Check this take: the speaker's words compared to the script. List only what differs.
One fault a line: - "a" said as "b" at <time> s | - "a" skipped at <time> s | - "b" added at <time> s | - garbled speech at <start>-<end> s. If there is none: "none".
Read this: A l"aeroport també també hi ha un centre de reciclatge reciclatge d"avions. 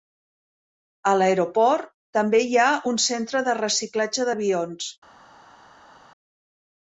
- "també" skipped at 2.4 s
- "reciclatge" skipped at 4.3 s